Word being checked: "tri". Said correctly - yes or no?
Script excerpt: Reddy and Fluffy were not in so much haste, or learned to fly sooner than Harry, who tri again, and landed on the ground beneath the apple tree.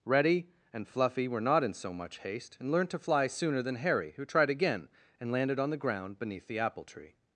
no